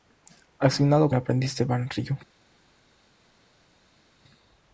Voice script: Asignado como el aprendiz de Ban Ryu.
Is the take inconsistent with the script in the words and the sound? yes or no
yes